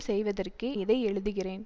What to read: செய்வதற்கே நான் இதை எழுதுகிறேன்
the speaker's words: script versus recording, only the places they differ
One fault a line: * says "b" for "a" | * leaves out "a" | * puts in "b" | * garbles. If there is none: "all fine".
* leaves out "நான்"